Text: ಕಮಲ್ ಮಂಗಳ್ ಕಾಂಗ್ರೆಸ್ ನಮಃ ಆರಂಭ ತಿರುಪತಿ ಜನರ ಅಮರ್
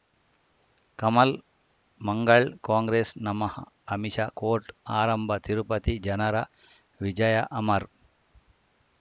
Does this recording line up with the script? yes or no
no